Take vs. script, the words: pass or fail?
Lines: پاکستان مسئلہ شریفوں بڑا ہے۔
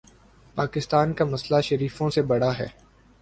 fail